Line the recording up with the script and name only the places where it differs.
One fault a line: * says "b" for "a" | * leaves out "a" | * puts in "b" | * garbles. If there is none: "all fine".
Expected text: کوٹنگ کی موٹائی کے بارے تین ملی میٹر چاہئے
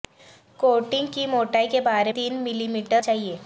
all fine